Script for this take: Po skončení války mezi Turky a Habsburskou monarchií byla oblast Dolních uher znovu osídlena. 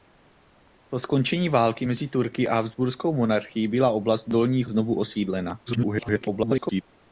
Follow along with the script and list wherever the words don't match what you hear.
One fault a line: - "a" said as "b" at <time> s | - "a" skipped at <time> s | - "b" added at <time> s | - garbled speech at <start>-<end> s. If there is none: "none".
- "uher" skipped at 4.7 s
- garbled speech at 5.7-6.8 s